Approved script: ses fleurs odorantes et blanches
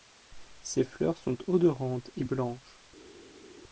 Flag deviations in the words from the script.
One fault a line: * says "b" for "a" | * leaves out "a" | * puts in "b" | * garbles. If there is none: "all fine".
* puts in "sont"